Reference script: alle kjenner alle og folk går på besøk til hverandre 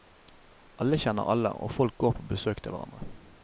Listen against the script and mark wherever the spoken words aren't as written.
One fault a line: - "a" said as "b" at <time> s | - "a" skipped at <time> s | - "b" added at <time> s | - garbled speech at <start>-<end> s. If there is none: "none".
none